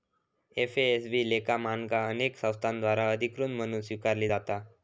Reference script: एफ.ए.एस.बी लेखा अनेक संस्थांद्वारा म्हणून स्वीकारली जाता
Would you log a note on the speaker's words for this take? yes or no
yes